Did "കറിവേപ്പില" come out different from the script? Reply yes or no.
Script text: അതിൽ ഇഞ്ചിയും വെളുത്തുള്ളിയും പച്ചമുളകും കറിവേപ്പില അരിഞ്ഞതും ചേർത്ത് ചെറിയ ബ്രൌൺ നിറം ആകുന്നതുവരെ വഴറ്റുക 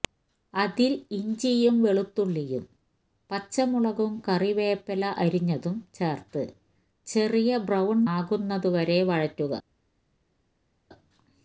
no